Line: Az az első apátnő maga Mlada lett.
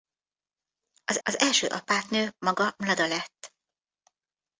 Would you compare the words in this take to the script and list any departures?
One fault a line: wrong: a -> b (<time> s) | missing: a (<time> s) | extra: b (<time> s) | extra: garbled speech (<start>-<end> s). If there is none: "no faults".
no faults